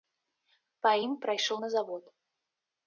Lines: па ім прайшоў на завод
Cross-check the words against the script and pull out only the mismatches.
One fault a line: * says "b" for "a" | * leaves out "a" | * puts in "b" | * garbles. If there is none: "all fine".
all fine